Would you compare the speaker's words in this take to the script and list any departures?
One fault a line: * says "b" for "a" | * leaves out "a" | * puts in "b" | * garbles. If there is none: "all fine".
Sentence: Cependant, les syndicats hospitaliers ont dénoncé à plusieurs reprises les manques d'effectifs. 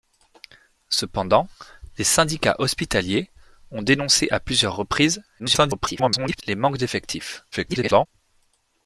* garbles
* garbles